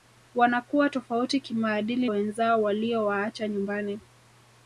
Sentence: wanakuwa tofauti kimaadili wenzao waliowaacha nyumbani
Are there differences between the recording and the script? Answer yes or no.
no